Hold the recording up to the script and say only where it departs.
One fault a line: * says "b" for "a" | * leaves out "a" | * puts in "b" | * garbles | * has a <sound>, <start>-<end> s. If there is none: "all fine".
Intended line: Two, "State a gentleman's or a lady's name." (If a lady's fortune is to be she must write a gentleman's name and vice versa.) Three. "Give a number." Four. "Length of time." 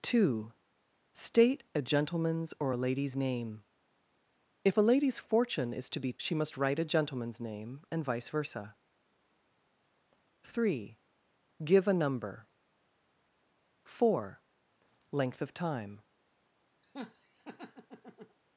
* has a laugh, 16.8-18.4 s